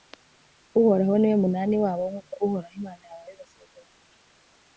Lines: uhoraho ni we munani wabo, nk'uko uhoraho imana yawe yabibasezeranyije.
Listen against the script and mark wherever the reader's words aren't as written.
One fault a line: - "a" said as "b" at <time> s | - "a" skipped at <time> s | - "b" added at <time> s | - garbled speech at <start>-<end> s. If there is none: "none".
none